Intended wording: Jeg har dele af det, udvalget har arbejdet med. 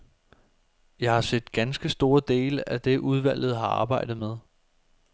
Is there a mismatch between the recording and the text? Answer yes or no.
yes